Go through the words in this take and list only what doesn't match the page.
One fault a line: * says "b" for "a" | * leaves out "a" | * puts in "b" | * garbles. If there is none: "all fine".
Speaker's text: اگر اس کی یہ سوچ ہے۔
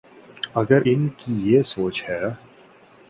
* says "ان" for "اس"